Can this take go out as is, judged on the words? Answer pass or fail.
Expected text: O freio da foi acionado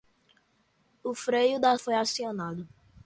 pass